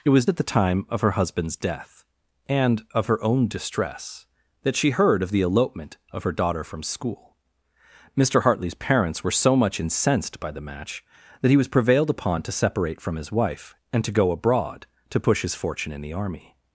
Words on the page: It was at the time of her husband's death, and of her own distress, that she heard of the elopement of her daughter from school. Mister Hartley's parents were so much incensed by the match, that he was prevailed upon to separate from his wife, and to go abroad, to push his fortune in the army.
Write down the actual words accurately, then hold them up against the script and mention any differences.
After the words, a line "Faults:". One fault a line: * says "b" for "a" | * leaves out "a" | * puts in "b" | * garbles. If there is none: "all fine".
It was at the time of her husband's death, and of her own distress, that she heard of the elopement of her daughter from school. Mister Hartley's parents were so much incensed by the match, that he was prevailed upon to separate from his wife, and to go abroad, to push his fortune in the army.
Faults:
all fine